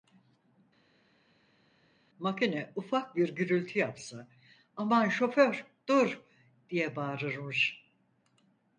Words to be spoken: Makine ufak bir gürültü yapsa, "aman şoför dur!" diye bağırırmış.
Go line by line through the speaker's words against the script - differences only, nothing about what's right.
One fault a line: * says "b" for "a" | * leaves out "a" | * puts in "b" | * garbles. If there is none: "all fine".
all fine